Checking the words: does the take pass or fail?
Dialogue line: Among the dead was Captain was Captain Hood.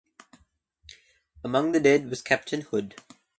fail